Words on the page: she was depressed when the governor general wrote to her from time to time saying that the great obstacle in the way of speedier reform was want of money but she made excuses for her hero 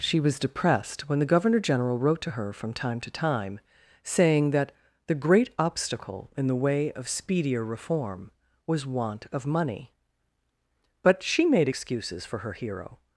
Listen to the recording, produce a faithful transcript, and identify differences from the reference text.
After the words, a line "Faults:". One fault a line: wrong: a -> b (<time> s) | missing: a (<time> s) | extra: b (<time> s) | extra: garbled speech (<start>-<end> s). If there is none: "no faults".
she was depressed when the governor general wrote to her from time to time saying that the great obstacle in the way of speedier reform was want of money but she made excuses for her hero
Faults:
no faults